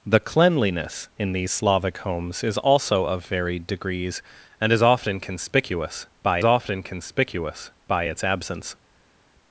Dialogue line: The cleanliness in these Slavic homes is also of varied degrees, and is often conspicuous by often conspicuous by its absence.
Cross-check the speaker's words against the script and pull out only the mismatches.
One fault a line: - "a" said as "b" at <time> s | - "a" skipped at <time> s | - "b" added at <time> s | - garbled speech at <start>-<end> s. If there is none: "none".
none